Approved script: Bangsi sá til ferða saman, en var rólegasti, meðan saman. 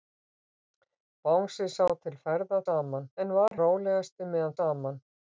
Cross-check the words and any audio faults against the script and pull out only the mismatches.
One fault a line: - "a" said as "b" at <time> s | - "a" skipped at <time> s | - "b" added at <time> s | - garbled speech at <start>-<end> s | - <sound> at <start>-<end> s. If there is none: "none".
- dropout at 3.5-3.5 s